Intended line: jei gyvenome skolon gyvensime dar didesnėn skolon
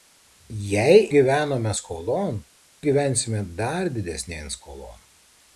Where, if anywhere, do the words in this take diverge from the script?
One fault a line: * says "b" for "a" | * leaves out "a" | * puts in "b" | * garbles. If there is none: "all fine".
all fine